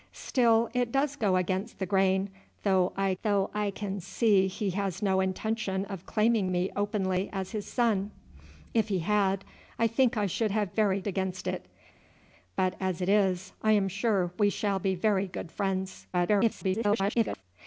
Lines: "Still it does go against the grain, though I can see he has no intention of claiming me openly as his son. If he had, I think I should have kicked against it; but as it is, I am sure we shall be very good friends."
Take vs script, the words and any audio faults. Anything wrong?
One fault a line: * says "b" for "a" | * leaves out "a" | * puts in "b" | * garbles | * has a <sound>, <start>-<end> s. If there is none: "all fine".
* puts in "though I"
* says "very" for "kicked"
* garbles